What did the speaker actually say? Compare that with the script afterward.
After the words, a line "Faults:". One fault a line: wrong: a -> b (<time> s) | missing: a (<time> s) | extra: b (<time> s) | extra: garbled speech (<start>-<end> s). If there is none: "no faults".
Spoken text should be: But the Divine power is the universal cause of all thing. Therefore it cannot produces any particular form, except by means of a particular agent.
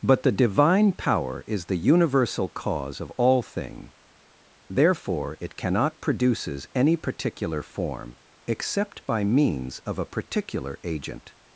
But the Divine power is the universal cause of all thing. Therefore it cannot produces any particular form, except by means of a particular agent.
Faults:
no faults